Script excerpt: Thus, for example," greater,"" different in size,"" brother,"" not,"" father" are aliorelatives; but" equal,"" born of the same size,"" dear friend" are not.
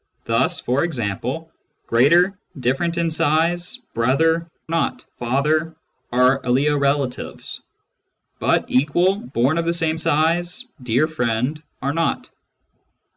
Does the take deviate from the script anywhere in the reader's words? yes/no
no